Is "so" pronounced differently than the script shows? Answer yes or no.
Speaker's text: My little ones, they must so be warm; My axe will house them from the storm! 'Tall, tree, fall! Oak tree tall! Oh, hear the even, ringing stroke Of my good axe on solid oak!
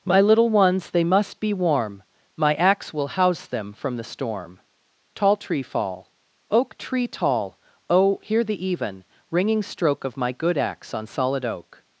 yes